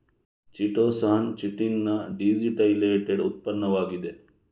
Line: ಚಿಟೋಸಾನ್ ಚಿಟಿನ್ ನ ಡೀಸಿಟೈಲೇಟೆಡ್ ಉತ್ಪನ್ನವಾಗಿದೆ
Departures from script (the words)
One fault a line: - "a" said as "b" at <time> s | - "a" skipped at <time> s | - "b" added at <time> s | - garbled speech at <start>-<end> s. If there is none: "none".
none